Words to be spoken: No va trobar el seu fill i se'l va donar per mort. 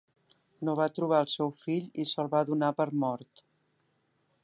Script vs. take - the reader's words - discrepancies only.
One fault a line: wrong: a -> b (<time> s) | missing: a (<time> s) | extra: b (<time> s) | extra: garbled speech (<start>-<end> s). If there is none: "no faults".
no faults